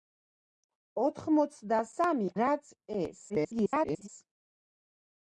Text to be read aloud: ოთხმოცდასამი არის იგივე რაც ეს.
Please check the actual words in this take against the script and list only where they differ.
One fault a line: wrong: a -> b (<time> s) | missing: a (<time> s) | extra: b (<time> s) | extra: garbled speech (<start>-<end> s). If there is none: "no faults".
missing: არის იგივე (2.3 s)
extra: garbled speech (3.3-4.1 s)